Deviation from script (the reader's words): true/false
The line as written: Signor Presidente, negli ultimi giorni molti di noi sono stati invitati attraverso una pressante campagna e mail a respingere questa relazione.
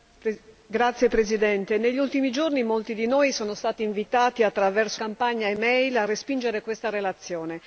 true